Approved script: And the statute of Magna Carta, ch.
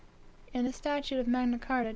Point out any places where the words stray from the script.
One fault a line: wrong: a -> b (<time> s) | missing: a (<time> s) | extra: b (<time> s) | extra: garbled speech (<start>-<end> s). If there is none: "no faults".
no faults